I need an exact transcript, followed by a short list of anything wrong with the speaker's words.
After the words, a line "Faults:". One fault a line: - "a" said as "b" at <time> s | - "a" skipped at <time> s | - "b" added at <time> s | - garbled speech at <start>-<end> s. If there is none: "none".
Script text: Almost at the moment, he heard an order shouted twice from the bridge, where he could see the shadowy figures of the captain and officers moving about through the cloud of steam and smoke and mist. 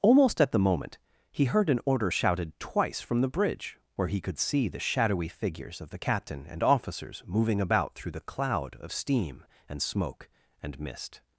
Almost at the moment, he heard an order shouted twice from the bridge, where he could see the shadowy figures of the captain and officers moving about through the cloud of steam and smoke and mist.
Faults:
none